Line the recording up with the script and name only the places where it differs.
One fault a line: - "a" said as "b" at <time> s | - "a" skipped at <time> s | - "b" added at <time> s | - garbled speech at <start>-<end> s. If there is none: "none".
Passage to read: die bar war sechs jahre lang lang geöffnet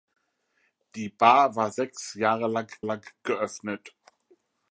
none